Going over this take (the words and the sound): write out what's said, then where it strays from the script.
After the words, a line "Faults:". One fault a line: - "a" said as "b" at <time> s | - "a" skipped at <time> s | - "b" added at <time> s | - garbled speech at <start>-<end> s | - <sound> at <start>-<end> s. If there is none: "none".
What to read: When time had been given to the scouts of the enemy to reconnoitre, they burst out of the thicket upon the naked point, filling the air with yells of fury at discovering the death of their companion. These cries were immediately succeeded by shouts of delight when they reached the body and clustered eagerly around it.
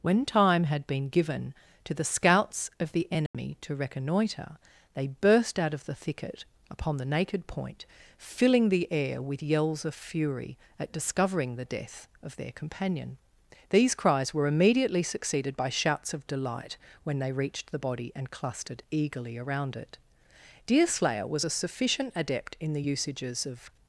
When time had been given to the scouts of the enemy to reconnoitre, they burst out of the thicket upon the naked point, filling the air with yells of fury at discovering the death of their companion. These cries were immediately succeeded by shouts of delight when they reached the body and clustered eagerly around it. Deerslayer was a sufficient adept in the usages of
Faults:
- dropout at 3.3-3.3 s
- "Deerslayer was a sufficient adept in the usages of" added at 20.7 s